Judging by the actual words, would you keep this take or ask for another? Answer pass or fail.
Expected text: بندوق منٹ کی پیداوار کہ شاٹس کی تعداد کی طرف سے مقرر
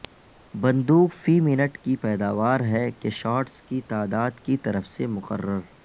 fail